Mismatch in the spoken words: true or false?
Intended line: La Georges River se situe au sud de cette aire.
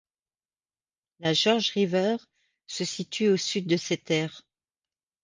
false